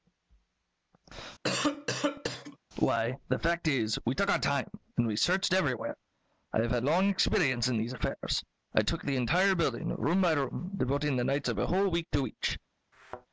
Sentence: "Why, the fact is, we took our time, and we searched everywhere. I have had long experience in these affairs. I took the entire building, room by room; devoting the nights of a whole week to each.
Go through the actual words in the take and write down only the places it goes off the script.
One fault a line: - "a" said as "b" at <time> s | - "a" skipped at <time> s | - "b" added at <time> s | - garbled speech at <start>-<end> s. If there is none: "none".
none